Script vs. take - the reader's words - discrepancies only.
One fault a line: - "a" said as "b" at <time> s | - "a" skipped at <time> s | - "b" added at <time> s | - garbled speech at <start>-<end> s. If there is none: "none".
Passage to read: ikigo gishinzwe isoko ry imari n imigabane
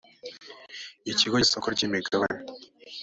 - "gishinzwe" skipped at 1.4 s
- "imari" skipped at 1.8 s